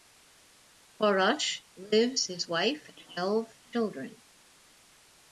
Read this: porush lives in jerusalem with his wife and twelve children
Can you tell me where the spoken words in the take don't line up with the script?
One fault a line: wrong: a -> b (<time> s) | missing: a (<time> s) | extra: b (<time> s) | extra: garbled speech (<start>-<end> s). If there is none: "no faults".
missing: in jerusalem with (2.3 s)
missing: and (2.9 s)